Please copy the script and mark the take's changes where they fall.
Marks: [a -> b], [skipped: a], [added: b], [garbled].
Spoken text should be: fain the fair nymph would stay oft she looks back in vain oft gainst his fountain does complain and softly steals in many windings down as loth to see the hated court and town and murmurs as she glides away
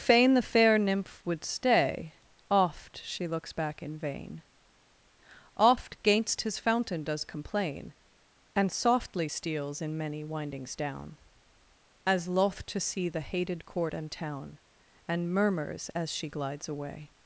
fain the fair nymph would stay oft she looks back in vain oft gainst his fountain does complain and softly steals in many windings down as loth to see the hated court and town and murmurs as she glides away